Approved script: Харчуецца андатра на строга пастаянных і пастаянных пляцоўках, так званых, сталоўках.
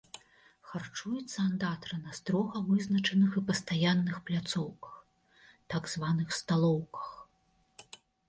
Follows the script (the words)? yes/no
no